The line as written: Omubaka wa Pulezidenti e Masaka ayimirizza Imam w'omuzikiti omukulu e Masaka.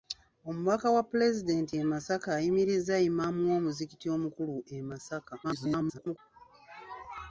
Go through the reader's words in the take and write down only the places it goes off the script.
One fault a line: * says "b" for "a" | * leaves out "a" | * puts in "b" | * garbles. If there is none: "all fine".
* garbles